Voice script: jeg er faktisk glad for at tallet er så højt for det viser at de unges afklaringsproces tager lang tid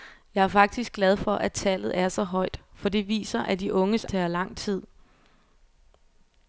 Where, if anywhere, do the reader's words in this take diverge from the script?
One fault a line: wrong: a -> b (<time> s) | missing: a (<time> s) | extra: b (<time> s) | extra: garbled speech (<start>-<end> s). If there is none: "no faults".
missing: afklaringsproces (4.0 s)